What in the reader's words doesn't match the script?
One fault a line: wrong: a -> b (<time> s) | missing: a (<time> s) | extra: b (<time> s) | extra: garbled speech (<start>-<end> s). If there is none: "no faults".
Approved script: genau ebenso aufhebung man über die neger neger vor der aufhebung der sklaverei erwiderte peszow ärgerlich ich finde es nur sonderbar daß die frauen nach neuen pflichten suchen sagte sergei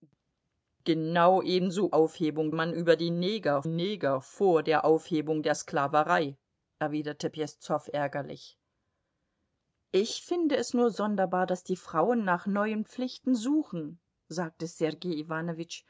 no faults